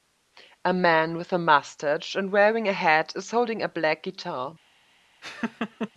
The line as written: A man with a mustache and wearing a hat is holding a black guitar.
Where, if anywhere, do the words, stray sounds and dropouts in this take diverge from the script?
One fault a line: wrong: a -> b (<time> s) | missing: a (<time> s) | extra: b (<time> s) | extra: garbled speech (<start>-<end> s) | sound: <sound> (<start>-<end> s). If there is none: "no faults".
sound: laugh (5.2-5.9 s)